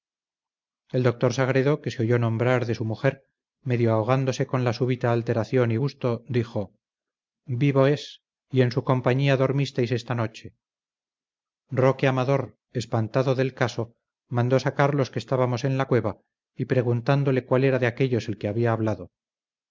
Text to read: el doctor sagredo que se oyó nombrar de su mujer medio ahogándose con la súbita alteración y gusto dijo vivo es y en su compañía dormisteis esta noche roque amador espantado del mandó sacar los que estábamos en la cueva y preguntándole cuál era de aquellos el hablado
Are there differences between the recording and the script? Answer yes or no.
yes